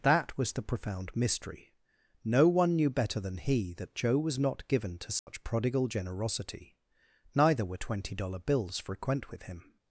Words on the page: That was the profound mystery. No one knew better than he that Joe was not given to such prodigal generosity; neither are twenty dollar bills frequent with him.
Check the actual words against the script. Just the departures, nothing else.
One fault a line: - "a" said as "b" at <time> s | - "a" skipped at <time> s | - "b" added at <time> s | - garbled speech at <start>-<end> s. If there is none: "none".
- "are" said as "were" at 7.7 s